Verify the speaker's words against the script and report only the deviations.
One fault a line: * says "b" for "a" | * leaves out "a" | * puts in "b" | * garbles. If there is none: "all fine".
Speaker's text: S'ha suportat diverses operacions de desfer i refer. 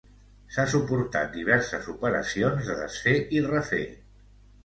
all fine